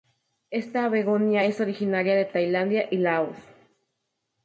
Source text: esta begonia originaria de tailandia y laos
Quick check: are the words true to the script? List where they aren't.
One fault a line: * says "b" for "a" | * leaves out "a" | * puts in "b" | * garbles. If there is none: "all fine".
* puts in "es"